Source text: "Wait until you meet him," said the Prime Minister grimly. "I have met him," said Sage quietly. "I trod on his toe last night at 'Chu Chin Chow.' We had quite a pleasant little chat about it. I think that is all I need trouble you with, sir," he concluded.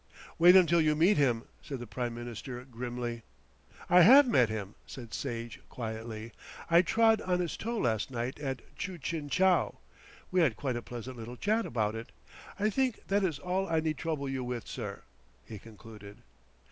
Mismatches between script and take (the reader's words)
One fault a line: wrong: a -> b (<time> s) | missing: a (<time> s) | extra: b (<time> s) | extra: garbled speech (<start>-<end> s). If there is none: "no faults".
no faults